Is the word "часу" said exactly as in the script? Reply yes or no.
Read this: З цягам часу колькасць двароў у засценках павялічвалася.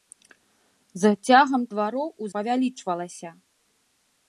no